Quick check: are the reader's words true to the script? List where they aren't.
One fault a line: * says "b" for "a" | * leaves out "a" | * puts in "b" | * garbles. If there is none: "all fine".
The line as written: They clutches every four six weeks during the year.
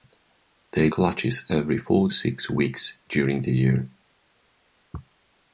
all fine